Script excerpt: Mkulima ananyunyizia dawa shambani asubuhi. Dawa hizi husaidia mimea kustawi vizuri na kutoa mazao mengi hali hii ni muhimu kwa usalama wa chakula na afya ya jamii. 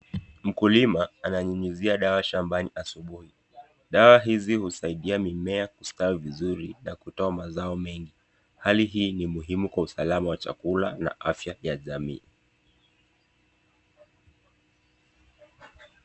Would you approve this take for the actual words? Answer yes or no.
yes